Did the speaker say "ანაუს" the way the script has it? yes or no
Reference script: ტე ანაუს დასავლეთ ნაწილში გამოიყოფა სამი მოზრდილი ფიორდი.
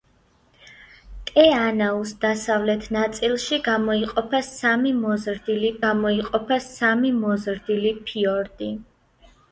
yes